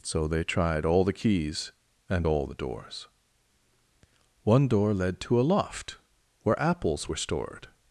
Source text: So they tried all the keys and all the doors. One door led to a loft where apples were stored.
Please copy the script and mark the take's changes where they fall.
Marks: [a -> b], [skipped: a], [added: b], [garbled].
So they tried all the keys and all the doors. One door led to a loft where apples were stored.